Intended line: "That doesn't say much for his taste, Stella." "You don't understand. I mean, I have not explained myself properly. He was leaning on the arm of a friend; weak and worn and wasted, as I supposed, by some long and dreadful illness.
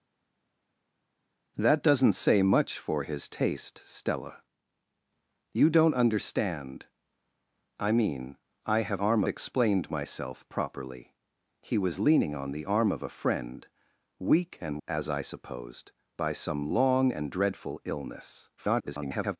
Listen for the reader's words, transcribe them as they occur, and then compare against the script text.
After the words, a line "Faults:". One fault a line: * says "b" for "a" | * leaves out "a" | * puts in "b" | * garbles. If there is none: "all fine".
"That doesn't say much for his taste, Stella." "You don't understand. I mean, I have arm explained myself properly. He was leaning on the arm of a friend; weak and as I supposed, by some long and dreadful illness. [garbled]
Faults:
* says "arm" for "not"
* leaves out "worn and wasted"
* garbles